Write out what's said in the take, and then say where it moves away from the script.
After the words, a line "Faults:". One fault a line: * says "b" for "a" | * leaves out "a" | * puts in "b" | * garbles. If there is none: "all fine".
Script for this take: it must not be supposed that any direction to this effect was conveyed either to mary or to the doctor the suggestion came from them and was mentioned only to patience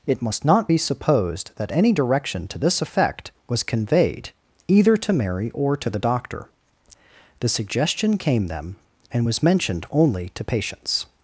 it must not be supposed that any direction to this effect was conveyed either to mary or to the doctor the suggestion came them and was mentioned only to patience
Faults:
* leaves out "from"